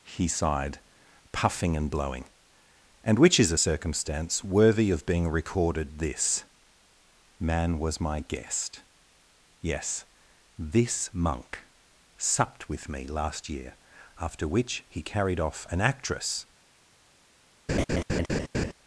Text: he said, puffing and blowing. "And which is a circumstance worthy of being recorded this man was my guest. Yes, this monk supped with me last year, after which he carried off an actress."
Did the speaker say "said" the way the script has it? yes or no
no